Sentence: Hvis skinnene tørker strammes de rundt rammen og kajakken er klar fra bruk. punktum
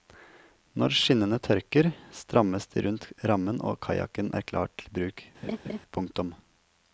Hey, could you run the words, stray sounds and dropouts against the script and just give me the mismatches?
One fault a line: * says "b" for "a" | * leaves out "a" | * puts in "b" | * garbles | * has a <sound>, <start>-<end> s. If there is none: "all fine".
* says "Når" for "Hvis"
* says "til" for "fra"
* has a laugh, 5.4-5.8 s